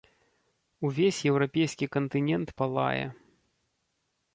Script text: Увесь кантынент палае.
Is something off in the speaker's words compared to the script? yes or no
yes